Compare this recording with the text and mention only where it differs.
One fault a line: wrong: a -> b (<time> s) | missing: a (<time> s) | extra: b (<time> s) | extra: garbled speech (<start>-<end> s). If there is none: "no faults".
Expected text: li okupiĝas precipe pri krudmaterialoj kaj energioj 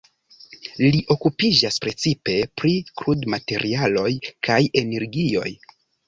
no faults